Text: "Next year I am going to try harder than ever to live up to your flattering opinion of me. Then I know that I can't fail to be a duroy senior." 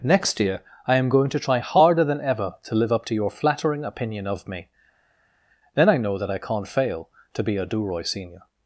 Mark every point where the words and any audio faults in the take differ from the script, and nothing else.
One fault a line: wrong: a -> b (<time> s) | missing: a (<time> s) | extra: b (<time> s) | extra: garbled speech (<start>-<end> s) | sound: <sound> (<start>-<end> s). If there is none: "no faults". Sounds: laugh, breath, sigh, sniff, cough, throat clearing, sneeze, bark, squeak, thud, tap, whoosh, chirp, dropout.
no faults